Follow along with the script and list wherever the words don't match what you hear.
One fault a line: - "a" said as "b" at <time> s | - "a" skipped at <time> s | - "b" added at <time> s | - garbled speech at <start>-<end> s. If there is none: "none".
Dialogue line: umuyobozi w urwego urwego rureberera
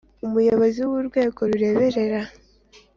- "urwego" skipped at 1.4 s